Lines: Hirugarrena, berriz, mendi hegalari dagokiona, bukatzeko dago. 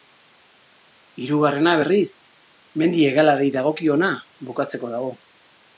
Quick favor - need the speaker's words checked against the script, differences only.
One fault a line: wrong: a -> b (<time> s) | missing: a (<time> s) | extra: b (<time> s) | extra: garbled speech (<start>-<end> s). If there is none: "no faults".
no faults